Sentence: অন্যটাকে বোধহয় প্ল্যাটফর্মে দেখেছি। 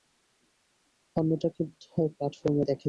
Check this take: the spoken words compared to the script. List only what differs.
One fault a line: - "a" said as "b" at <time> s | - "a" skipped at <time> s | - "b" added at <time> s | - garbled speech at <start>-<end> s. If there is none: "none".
none